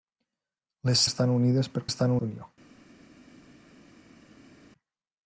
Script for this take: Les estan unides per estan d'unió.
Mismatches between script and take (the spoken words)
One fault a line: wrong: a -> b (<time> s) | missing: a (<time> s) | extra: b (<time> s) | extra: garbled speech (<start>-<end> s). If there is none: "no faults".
no faults